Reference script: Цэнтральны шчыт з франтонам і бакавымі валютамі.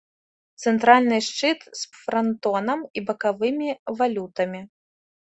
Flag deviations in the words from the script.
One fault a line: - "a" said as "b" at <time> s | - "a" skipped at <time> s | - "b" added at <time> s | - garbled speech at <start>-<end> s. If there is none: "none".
none